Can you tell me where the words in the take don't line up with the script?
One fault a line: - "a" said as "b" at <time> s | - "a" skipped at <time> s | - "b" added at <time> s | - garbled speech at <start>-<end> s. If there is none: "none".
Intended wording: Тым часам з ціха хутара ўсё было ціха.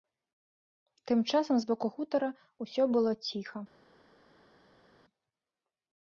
- "ціха" said as "боку" at 1.7 s